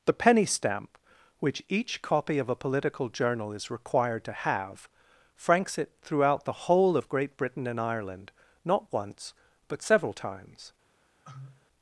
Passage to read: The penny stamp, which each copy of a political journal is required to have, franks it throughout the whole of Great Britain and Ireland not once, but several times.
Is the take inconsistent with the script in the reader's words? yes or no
no